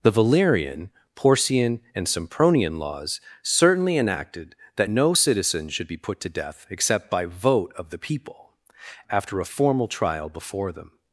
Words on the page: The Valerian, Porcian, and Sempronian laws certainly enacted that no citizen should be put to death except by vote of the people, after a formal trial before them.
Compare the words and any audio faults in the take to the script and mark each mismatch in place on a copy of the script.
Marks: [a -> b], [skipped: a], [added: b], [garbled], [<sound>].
The Valerian, Porcian, and Sempronian laws certainly enacted that no citizen should be put to death except by vote of the people, after a formal trial before them.